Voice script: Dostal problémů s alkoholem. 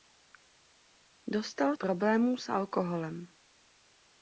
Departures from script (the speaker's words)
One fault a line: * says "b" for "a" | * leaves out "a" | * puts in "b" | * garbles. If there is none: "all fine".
all fine